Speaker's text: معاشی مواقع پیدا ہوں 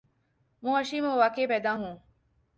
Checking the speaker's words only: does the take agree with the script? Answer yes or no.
yes